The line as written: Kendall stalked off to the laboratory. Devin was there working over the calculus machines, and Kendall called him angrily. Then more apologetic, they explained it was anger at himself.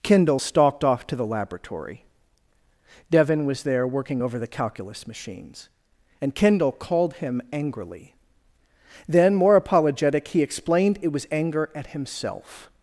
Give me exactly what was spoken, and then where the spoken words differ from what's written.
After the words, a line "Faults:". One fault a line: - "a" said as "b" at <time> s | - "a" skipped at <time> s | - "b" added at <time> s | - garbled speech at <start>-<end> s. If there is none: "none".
Kendall stalked off to the laboratory. Devin was there working over the calculus machines, and Kendall called him angrily. Then more apologetic, he explained it was anger at himself.
Faults:
- "they" said as "he" at 10.3 s